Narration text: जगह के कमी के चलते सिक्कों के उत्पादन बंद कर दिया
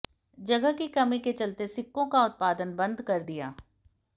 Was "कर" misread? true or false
false